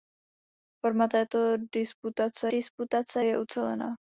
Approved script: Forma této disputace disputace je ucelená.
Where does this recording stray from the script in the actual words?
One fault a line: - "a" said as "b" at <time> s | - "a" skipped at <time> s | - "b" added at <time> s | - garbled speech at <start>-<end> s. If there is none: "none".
none